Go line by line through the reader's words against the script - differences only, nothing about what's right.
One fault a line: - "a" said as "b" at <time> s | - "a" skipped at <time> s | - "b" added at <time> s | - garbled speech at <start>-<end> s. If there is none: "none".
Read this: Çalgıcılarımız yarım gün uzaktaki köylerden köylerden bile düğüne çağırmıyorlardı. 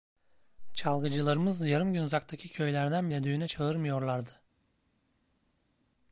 - "köylerden" skipped at 3.1 s